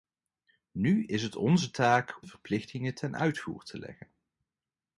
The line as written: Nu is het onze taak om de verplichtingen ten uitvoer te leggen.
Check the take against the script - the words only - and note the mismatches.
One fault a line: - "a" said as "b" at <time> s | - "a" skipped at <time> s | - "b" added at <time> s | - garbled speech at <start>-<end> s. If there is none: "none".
- "om" skipped at 2.2 s